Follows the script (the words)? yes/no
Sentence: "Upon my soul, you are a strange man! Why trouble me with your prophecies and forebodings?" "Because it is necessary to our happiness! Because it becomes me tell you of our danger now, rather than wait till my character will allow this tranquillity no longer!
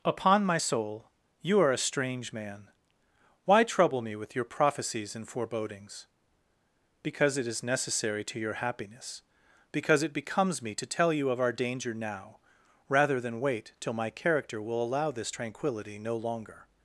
no